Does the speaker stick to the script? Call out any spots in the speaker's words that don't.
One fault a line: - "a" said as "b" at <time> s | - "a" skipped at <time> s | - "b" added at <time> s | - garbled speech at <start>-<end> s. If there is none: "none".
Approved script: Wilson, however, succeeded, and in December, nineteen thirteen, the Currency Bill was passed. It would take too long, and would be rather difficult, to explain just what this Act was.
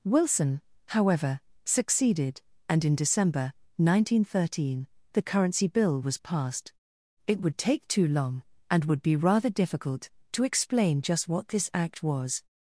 none